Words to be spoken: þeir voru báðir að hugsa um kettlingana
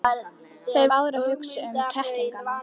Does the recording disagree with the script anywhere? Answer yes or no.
yes